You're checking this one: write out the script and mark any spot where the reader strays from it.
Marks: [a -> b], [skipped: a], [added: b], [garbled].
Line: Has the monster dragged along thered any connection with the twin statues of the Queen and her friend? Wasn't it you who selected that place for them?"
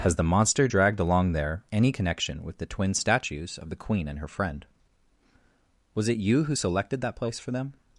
Has the monster dragged along [thered -> there] any connection with the twin statues of the Queen and her friend? [Wasn't -> Was] it you who selected that place for them?"